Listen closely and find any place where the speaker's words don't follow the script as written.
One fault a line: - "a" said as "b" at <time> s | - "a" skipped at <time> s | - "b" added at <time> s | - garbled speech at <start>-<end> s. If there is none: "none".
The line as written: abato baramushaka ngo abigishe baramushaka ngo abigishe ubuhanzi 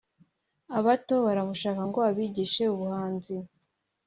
- "baramushaka ngo abigishe" skipped at 2.6 s